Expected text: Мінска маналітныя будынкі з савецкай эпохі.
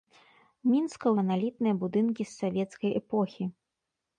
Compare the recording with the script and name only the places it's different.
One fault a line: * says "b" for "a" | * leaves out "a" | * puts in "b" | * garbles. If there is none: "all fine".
all fine